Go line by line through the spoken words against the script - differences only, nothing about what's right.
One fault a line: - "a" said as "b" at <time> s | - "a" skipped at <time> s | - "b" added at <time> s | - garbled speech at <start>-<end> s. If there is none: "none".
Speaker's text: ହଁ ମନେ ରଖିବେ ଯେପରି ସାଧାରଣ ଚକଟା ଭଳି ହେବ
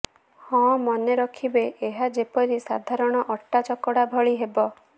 - "ଏହା" added at 1.9 s
- "ଅଟା" added at 3.4 s